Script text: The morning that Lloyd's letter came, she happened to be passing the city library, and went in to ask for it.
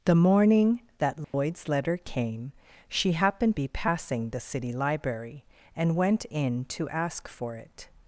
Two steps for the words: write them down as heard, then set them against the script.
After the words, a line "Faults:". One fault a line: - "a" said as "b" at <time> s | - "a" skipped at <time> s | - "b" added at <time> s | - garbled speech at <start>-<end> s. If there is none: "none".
The morning that Lloyd's letter came, she happened be passing the city library, and went in to ask for it.
Faults:
- "to" skipped at 3.5 s